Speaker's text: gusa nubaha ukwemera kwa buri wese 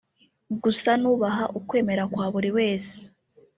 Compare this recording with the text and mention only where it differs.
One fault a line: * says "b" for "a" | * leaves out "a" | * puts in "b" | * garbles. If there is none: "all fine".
all fine